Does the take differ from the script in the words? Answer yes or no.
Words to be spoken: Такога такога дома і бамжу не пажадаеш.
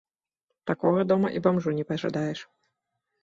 yes